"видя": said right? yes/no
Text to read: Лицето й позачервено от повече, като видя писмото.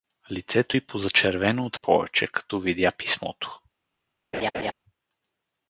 yes